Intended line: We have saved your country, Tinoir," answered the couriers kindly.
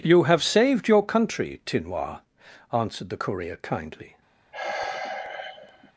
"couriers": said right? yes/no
no